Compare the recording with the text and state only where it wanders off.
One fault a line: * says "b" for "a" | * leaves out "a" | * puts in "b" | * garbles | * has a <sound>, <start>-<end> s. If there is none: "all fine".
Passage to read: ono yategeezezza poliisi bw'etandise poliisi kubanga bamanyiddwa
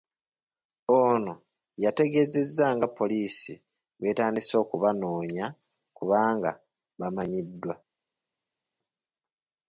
* puts in "nga"
* says "okubanoonya" for "poliisi"